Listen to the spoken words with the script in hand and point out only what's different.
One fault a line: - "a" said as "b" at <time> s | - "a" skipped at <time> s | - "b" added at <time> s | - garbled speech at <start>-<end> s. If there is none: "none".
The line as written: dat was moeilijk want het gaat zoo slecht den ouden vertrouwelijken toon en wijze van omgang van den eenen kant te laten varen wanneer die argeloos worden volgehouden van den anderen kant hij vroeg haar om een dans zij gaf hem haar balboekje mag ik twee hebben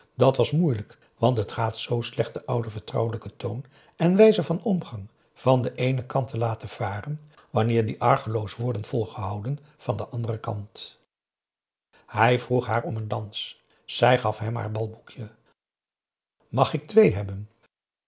none